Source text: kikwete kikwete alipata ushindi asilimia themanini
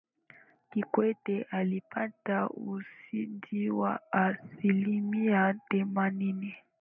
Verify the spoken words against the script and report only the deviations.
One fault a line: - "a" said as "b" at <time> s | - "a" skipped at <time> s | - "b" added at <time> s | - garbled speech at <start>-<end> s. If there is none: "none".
- "kikwete" skipped at 1.4 s
- "wa" added at 3.7 s